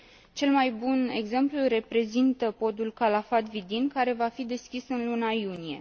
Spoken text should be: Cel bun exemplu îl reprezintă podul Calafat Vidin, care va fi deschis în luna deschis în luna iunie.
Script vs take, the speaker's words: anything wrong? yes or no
yes